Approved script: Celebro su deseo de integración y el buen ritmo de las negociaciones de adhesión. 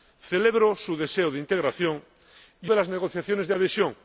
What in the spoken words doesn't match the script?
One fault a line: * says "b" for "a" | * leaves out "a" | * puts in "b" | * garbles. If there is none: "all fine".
* leaves out "el buen ritmo"